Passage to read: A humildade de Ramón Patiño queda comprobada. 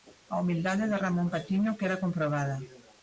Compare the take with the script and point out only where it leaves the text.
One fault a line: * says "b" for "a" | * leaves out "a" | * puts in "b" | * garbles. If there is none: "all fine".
all fine